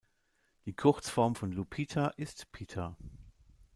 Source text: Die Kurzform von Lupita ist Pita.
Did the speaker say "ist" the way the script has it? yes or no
yes